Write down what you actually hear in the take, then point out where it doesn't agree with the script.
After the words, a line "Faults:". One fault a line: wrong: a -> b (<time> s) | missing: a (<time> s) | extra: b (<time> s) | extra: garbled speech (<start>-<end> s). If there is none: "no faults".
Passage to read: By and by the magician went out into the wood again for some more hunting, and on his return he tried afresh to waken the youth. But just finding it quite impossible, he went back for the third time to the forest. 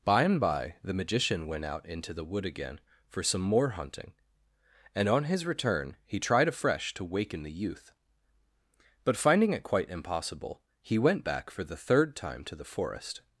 By and by the magician went out into the wood again for some more hunting, and on his return he tried afresh to waken the youth. But finding it quite impossible, he went back for the third time to the forest.
Faults:
missing: just (9.2 s)